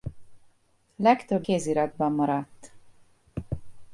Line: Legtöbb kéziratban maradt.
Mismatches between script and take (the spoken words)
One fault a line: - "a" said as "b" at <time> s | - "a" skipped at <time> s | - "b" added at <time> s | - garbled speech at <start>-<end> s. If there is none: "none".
none